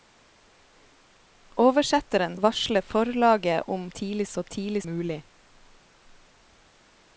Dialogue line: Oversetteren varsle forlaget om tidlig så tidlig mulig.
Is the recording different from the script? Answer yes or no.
no